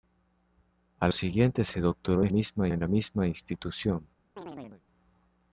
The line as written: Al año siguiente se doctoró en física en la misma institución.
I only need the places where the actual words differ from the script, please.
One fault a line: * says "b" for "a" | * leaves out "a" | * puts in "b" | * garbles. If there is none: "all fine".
* leaves out "año"
* says "misma" for "física"